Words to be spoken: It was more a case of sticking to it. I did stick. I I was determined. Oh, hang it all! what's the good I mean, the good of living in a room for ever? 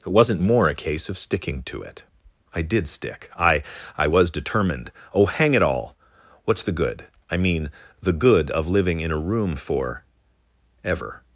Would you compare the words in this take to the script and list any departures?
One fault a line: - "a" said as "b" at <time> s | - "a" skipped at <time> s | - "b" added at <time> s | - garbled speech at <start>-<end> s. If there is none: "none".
- "was" said as "wasn't" at 0.1 s